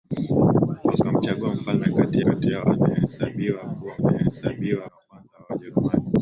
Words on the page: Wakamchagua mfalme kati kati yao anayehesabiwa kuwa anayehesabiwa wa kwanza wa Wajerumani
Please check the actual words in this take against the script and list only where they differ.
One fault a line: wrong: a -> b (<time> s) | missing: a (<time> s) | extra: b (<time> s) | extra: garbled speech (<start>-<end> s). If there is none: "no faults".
no faults